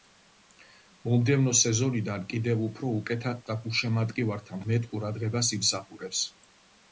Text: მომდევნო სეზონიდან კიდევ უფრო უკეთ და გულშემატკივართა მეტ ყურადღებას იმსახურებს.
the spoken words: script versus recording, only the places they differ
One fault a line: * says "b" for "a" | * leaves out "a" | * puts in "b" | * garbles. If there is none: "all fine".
all fine